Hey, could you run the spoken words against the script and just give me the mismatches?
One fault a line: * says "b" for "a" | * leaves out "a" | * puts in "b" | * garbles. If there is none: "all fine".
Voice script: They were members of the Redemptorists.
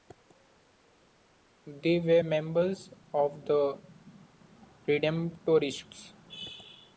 all fine